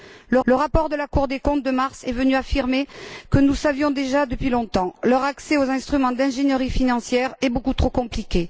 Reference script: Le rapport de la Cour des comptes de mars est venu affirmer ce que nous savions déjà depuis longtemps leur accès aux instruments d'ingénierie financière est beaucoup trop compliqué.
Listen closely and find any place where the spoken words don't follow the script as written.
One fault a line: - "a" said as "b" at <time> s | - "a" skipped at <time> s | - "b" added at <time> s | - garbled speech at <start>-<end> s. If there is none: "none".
- "le" added at 0.4 s